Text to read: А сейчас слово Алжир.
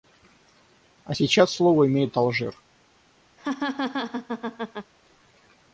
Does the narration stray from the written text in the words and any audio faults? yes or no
yes